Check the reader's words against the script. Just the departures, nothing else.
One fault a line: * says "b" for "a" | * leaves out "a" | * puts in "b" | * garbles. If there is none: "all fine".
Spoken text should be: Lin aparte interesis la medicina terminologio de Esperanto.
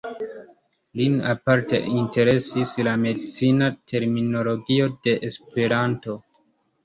all fine